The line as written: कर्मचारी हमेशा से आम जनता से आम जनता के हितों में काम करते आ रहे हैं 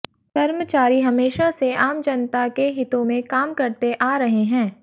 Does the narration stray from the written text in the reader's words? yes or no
yes